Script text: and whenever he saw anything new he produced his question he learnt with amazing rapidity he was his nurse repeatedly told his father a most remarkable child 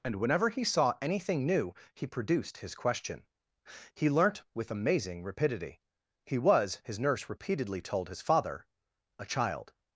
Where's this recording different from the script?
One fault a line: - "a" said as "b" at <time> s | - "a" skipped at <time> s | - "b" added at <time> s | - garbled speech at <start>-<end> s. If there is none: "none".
- "most remarkable" skipped at 9.3 s